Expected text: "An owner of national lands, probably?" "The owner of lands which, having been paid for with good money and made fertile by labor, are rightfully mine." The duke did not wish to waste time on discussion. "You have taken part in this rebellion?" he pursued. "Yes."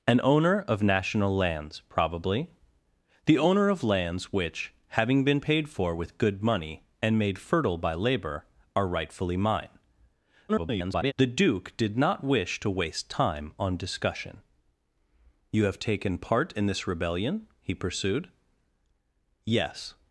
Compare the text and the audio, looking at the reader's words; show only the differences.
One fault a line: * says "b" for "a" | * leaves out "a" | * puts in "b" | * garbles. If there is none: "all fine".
* garbles